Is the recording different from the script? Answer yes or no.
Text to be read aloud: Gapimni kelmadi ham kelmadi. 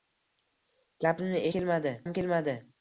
no